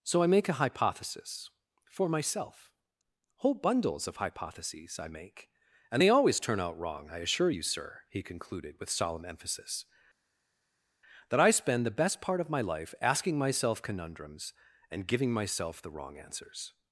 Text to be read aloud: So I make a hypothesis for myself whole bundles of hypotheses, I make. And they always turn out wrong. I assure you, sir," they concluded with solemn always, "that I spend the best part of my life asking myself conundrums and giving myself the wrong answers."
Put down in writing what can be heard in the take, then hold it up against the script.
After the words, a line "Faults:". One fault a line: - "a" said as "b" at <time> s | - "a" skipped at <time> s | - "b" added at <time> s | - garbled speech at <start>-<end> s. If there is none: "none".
So I make a hypothesis for myself whole bundles of hypotheses, I make. And they always turn out wrong. I assure you, sir," he concluded with solemn emphasis, "that I spend the best part of my life asking myself conundrums and giving myself the wrong answers."
Faults:
- "they" said as "he" at 8.1 s
- "always" said as "emphasis" at 9.3 s